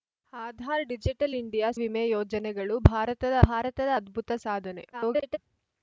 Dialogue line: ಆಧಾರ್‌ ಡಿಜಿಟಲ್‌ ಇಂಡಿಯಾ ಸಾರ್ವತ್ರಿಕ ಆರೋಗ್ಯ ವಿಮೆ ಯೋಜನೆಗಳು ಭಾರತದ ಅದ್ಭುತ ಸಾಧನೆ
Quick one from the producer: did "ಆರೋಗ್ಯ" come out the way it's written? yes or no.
no